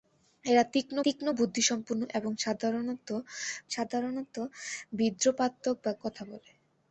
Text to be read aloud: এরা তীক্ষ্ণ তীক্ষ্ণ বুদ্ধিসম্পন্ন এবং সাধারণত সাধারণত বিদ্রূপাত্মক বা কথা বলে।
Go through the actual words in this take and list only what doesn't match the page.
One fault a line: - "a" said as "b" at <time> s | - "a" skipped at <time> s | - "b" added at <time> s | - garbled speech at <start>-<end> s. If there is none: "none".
none